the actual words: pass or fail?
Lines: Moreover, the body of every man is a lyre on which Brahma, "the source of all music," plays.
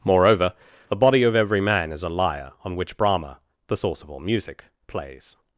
pass